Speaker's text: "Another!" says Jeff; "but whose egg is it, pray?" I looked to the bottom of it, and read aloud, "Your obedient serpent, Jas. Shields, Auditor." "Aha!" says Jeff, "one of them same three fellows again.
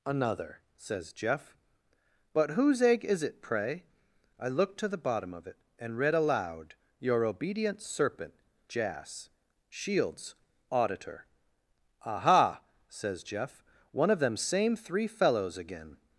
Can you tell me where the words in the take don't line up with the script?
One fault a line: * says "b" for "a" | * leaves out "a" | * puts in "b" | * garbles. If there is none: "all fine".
all fine